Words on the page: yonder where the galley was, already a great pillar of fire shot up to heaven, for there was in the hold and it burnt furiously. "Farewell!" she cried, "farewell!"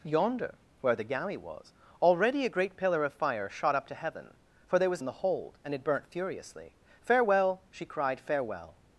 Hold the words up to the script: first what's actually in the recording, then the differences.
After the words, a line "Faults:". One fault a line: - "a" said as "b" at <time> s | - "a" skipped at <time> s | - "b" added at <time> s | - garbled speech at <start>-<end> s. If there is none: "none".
yonder where the galley was, already a great pillar of fire shot up to heaven, for there was in the hold and it burnt furiously. "Farewell!" she cried, "farewell!"
Faults:
none